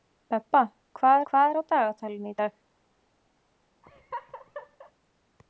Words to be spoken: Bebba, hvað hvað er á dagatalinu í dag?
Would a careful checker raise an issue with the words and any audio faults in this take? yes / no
yes